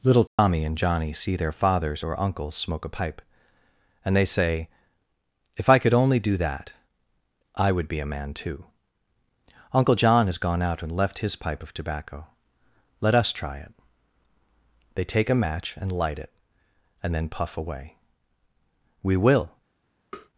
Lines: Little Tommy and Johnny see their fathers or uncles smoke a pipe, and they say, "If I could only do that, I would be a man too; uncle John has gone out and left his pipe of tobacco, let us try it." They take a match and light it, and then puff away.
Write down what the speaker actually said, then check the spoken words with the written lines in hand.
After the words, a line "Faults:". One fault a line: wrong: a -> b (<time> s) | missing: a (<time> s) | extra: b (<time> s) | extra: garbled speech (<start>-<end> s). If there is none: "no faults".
Little Tommy and Johnny see their fathers or uncles smoke a pipe, and they say, "If I could only do that, I would be a man too; uncle John has gone out and left his pipe of tobacco, let us try it." They take a match and light it, and then puff away. "We will
Faults:
extra: We will (19.0 s)